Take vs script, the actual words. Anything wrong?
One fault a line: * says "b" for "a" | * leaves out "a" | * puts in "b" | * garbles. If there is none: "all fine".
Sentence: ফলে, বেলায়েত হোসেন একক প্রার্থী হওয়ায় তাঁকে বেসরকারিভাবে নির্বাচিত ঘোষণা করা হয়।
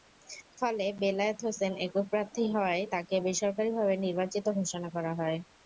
all fine